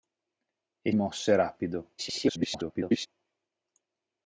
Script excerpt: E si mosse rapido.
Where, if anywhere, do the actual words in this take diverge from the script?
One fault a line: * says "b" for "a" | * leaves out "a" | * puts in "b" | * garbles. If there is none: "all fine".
* leaves out "si"
* garbles